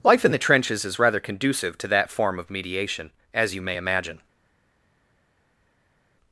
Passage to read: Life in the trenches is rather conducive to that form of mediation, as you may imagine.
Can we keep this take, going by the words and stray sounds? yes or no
yes